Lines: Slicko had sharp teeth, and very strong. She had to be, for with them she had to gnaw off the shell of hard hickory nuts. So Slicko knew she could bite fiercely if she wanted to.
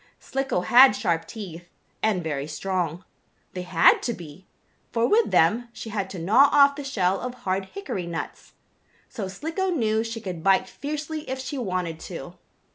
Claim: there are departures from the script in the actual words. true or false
true